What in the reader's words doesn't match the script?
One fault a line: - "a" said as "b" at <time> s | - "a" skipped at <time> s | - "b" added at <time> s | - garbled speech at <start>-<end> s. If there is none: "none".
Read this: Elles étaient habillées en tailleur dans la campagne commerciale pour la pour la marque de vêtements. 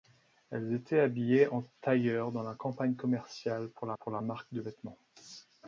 none